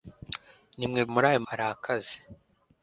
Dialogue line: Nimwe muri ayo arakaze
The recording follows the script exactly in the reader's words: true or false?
true